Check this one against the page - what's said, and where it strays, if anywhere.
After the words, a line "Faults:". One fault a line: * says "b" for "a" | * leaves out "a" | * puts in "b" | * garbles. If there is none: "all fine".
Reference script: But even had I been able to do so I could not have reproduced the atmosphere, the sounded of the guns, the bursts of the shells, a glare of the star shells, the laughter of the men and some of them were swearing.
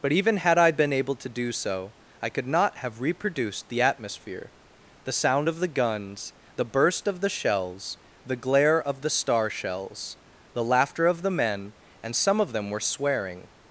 But even had I been able to do so I could not have reproduced the atmosphere, the sound of the guns, the burst of the shells, the glare of the star shells, the laughter of the men and some of them were swearing.
Faults:
* says "sound" for "sounded"
* says "burst" for "bursts"
* says "the" for "a"